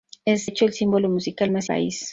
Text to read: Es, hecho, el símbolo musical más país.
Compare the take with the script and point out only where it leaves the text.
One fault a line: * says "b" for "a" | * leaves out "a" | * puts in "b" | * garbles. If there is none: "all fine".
all fine